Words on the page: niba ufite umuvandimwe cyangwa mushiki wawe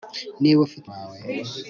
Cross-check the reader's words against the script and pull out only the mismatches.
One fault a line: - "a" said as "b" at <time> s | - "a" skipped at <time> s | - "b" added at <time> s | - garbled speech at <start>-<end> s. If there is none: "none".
- "umuvandimwe cyangwa mushiki" skipped at 0.9 s